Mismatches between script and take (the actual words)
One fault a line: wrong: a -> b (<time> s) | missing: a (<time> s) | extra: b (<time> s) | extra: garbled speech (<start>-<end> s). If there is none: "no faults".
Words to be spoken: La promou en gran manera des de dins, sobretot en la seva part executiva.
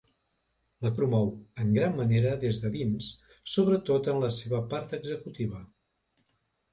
no faults